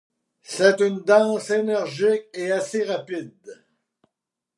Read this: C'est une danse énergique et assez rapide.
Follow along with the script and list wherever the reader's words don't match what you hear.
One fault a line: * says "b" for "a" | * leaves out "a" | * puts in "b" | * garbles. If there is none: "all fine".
all fine